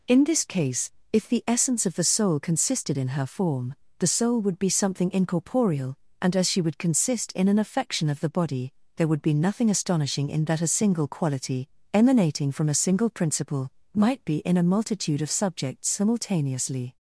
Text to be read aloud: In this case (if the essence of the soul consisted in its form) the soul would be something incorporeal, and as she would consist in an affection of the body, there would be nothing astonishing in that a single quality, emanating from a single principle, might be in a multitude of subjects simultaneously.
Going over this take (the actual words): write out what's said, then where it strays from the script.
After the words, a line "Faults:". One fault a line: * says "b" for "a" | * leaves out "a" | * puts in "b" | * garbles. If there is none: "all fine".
In this case (if the essence of the soul consisted in her form) the soul would be something incorporeal, and as she would consist in an affection of the body, there would be nothing astonishing in that a single quality, emanating from a single principle, might be in a multitude of subjects simultaneously.
Faults:
* says "her" for "its"